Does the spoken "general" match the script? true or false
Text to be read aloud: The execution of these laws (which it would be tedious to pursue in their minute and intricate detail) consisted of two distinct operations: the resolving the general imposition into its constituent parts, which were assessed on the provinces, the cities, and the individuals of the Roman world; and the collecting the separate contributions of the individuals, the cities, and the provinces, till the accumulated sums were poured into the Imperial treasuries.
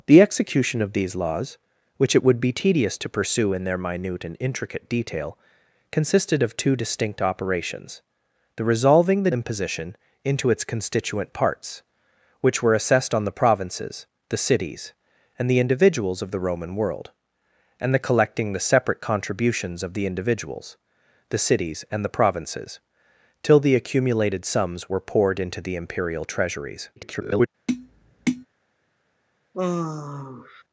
false